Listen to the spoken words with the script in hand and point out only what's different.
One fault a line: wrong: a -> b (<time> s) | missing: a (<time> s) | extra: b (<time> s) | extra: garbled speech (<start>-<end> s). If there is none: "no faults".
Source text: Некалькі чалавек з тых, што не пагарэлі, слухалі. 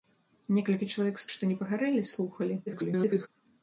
missing: тых (1.3 s)
extra: garbled speech (2.7-3.3 s)